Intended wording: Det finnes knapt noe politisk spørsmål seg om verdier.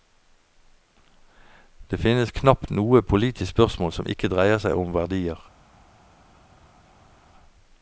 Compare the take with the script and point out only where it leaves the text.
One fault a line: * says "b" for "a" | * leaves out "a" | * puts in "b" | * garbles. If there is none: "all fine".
* puts in "som ikke dreier"